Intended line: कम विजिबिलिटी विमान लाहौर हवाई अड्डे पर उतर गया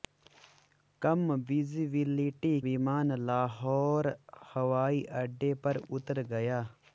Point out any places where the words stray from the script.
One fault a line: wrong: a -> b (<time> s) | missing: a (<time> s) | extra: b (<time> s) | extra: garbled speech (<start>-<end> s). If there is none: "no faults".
no faults